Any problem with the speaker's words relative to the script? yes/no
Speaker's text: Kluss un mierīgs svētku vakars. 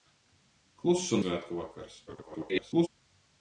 yes